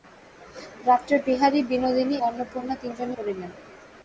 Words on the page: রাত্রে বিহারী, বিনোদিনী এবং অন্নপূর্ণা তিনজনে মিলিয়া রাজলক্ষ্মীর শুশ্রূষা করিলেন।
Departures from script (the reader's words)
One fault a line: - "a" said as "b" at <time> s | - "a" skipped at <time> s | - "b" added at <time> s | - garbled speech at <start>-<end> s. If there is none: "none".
- "এবং" skipped at 2.1 s
- "মিলিয়া রাজলক্ষ্মীর শুশ্রূষা" skipped at 3.1 s